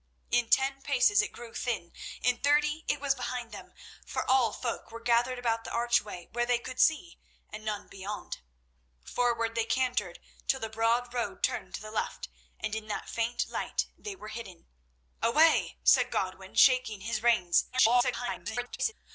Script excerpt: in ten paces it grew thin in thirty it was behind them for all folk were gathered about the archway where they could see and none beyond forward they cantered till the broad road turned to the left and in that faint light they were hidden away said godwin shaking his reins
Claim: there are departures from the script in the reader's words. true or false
true